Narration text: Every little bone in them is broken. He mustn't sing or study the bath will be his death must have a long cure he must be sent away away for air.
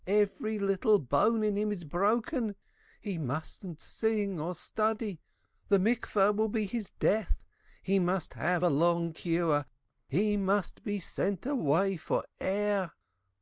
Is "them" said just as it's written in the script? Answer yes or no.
no